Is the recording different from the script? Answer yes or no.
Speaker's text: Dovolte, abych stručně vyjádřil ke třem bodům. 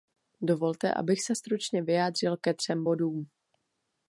yes